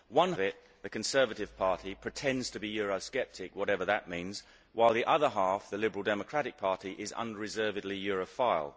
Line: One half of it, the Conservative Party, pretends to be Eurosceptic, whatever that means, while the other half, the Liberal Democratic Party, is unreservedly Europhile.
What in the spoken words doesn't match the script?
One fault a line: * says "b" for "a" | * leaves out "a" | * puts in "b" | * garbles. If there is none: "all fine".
* leaves out "half of"